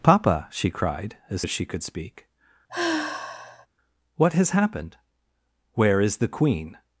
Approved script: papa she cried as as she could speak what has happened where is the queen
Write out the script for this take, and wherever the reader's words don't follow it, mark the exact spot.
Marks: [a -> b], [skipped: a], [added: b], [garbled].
papa she cried as as she could speak what has happened where is the queen